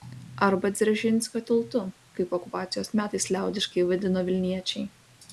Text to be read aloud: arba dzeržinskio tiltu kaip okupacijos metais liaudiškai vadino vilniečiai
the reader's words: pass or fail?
pass